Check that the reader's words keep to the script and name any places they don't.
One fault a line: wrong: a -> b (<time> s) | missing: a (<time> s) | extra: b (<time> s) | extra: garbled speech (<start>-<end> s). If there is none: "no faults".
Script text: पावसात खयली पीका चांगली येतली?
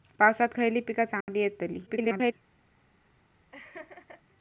extra: garbled speech (1.9-2.3 s)